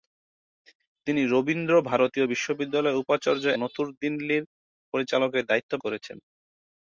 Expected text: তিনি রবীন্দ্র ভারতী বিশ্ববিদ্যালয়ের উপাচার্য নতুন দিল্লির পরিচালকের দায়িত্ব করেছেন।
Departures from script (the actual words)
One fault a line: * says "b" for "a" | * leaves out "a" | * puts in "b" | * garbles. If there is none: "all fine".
all fine